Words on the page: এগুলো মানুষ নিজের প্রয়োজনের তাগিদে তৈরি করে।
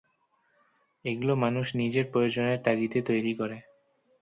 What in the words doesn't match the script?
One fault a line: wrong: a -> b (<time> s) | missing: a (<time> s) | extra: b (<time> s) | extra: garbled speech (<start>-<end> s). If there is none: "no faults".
no faults